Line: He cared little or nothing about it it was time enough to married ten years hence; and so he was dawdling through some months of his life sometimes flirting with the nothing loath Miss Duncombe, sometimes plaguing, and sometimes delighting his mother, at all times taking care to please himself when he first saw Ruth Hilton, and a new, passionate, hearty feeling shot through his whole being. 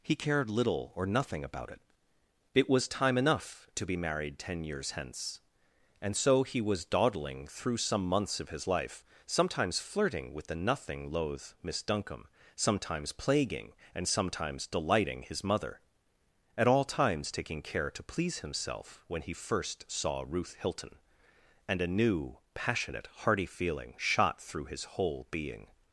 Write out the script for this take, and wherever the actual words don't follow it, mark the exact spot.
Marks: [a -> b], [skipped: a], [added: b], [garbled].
He cared little or nothing about it it was time enough to [added: be] married ten years hence; and so he was dawdling through some months of his life sometimes flirting with the nothing loath Miss Duncombe, sometimes plaguing, and sometimes delighting his mother, at all times taking care to please himself when he first saw Ruth Hilton, and a new, passionate, hearty feeling shot through his whole being.